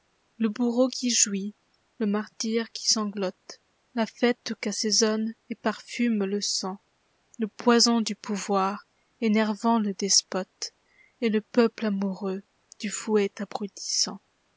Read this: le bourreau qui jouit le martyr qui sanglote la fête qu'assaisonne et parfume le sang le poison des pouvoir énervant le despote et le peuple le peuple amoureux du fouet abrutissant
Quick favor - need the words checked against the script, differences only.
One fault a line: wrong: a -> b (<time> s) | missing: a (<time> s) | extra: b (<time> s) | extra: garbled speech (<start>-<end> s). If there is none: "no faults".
wrong: des -> du (8.0 s)
missing: le peuple (11.8 s)